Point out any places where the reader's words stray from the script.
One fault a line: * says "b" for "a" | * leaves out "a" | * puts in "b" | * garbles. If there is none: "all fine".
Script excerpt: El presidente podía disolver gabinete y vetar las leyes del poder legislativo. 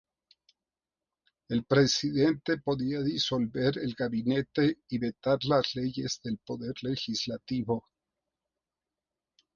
* puts in "el"